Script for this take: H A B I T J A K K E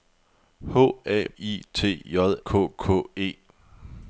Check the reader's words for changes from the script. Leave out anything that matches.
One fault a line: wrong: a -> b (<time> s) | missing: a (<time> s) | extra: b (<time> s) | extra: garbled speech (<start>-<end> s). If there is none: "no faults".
missing: B (1.3 s)
missing: A (2.4 s)